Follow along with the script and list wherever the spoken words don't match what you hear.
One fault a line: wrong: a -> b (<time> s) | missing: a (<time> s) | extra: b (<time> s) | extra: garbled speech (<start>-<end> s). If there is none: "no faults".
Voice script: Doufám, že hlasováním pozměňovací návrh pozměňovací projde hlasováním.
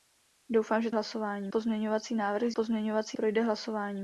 no faults